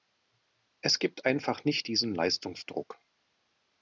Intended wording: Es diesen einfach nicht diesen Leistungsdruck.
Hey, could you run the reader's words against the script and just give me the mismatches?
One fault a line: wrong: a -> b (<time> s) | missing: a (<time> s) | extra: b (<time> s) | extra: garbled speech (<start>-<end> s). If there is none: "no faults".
wrong: diesen -> gibt (1.0 s)